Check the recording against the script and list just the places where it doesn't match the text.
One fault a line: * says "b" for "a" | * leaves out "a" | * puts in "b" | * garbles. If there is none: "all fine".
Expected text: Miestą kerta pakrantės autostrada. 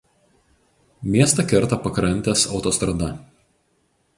all fine